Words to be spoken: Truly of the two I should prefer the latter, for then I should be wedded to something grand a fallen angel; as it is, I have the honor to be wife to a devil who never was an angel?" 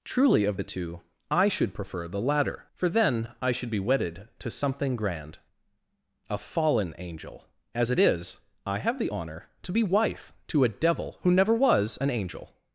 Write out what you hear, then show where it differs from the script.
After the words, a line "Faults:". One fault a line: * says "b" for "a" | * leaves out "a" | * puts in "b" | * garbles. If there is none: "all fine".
Truly of the two I should prefer the latter, for then I should be wedded to something grand a fallen angel; as it is, I have the honor to be wife to a devil who never was an angel?"
Faults:
all fine